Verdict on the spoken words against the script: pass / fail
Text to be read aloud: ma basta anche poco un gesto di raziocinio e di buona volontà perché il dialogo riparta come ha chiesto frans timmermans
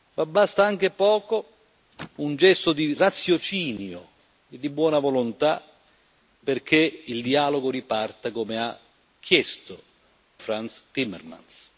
pass